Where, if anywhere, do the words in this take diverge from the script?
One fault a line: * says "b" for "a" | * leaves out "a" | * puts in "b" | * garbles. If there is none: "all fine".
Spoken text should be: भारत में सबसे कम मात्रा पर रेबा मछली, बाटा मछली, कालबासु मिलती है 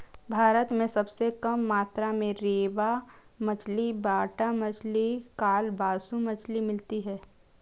* says "में" for "पर"
* puts in "मछली"